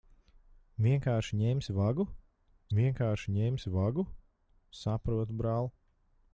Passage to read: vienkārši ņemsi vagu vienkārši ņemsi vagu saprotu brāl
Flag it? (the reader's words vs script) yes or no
no